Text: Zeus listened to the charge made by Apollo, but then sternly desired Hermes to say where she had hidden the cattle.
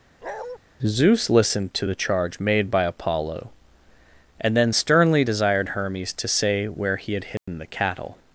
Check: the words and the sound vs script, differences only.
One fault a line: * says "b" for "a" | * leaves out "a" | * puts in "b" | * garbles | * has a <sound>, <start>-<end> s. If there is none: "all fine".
* has a bark, 0.2-0.6 s
* says "and" for "but"
* says "he" for "she"
* has a dropout, 7.4-7.5 s